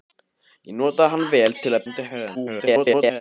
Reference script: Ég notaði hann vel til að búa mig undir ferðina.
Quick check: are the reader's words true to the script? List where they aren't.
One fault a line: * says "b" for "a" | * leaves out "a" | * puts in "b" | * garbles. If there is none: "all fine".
* leaves out "búa mig"
* garbles